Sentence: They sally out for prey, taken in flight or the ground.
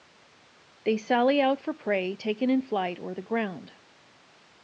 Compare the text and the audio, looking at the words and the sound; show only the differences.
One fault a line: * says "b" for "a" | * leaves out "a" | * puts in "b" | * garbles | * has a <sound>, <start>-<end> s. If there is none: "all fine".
all fine